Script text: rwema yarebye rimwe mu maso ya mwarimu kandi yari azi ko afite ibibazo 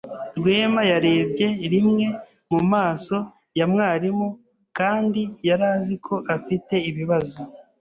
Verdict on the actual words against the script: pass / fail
pass